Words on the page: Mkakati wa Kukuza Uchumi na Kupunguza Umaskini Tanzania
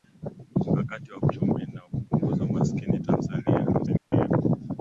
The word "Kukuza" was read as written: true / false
false